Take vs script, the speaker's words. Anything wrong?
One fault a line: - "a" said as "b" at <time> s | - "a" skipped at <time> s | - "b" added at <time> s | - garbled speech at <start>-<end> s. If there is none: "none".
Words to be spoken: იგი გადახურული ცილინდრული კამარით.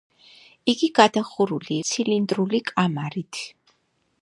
none